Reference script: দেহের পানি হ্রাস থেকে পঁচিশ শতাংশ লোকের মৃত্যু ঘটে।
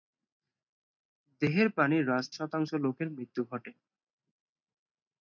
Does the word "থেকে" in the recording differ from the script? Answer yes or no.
yes